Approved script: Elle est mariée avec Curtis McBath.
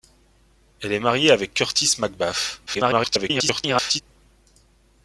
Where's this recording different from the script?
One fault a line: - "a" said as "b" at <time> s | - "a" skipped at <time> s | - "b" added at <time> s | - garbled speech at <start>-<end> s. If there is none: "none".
- garbled speech at 2.7-4.0 s